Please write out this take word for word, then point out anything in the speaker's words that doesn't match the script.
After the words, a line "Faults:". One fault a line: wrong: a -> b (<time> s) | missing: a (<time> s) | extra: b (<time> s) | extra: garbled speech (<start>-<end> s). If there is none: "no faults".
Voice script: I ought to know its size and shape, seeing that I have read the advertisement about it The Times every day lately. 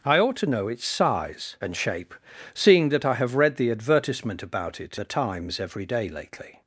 I ought to know its size and shape, seeing that I have read the advertisement about it The Times every day lately.
Faults:
no faults